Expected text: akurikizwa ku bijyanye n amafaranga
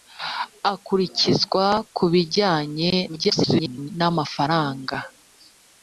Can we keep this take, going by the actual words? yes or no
no